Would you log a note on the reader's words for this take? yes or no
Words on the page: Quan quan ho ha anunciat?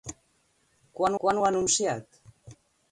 no